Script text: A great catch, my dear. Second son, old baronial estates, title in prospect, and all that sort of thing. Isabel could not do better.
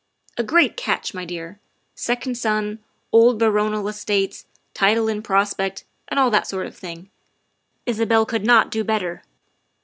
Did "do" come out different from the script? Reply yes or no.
no